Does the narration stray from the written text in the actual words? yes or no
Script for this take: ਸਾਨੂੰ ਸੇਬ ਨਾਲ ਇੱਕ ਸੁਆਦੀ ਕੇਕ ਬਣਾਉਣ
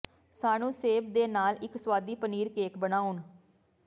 yes